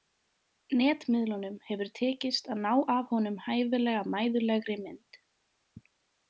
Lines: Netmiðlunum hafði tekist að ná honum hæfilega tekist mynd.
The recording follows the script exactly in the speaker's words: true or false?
false